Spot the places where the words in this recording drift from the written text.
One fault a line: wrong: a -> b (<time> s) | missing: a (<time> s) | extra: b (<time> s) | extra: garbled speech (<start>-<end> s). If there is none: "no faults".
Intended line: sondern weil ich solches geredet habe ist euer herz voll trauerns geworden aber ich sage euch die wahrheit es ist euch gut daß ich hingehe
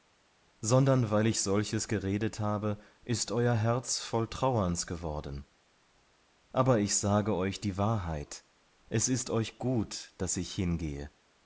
no faults